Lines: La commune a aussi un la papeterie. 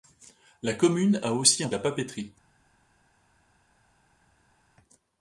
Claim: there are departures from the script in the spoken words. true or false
false